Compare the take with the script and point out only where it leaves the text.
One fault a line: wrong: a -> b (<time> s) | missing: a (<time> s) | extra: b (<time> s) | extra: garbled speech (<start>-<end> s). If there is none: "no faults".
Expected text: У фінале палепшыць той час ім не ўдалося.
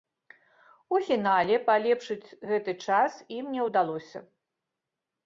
wrong: той -> гэты (2.5 s)